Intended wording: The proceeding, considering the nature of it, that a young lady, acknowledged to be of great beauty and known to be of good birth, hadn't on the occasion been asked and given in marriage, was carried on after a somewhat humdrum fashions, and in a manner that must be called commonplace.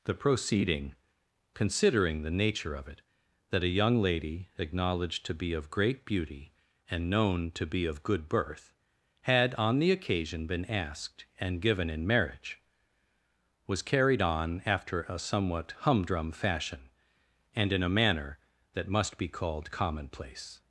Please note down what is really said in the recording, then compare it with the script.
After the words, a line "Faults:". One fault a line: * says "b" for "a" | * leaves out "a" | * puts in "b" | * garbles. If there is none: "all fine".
The proceeding, considering the nature of it, that a young lady, acknowledged to be of great beauty and known to be of good birth, had on the occasion been asked and given in marriage, was carried on after a somewhat humdrum fashion, and in a manner that must be called commonplace.
Faults:
* says "had" for "hadn't"
* says "fashion" for "fashions"